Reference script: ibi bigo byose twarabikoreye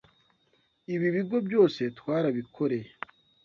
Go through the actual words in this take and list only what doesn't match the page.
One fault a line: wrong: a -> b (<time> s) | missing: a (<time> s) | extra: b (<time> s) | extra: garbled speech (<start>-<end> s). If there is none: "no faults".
no faults